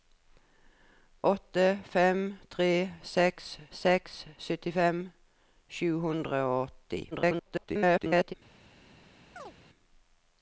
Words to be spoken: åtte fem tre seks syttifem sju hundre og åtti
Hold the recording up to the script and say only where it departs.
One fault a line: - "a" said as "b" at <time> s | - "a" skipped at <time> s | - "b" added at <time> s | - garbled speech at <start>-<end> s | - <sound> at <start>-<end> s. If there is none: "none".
- "seks" added at 3.8 s
- garbled speech at 7.1-8.3 s
- chirp at 9.4-9.5 s